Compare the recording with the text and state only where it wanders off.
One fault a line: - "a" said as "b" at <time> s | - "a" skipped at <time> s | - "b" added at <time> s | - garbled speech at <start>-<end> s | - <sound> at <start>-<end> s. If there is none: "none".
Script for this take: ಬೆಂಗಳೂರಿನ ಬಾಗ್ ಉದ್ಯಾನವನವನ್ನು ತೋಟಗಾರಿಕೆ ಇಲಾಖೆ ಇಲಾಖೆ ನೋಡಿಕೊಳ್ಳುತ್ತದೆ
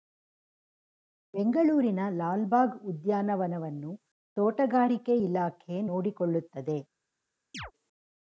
- "ಲಾಲ್" added at 2.1 s
- "ಇಲಾಖೆ" skipped at 5.8 s
- chirp at 7.5-7.7 s